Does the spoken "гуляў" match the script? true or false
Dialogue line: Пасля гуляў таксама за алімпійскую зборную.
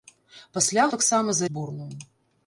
false